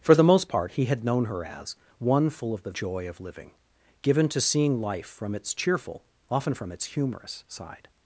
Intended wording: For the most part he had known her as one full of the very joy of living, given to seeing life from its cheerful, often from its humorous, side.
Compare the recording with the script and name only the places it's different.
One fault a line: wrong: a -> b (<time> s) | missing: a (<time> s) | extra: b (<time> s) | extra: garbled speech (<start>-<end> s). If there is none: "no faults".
missing: very (2.7 s)